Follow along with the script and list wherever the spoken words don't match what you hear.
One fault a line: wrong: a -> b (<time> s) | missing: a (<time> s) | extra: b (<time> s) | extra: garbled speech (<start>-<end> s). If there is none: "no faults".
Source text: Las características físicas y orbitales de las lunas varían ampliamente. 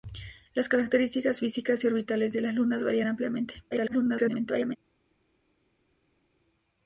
extra: garbled speech (3.7-4.8 s)